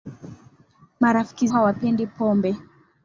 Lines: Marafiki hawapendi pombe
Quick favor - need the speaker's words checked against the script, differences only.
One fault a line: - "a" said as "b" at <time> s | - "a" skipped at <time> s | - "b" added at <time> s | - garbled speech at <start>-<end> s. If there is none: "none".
none